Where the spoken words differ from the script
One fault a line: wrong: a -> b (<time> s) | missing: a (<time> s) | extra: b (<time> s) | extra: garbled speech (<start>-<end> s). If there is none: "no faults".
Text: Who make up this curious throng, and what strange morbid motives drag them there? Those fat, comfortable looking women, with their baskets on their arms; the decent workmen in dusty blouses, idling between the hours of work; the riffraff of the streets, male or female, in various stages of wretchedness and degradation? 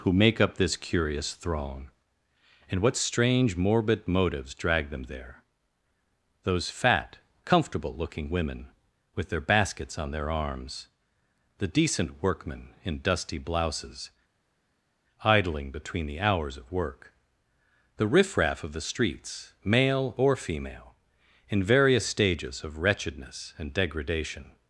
no faults